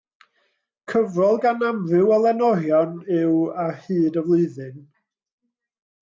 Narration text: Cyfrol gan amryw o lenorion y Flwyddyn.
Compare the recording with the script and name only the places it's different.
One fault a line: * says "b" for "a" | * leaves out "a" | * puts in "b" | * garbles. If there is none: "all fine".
* puts in "yw Ar hyd"